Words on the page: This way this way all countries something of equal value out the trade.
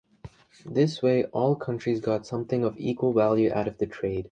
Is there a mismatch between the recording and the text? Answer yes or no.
yes